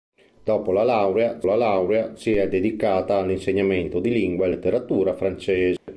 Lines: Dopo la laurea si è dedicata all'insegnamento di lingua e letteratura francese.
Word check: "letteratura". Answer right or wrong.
right